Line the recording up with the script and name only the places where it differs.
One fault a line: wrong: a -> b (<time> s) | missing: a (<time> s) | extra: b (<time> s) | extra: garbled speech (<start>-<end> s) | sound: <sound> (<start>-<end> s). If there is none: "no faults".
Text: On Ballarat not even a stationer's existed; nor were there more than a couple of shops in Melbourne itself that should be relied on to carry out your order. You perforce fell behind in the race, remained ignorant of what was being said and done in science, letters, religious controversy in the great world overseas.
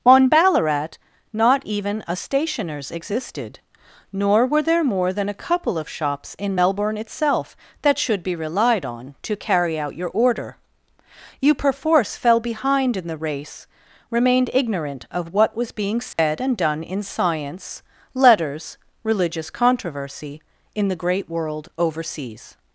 sound: dropout (16.1-16.2 s)